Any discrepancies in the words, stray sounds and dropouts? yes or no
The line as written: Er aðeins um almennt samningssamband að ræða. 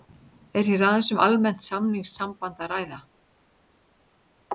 yes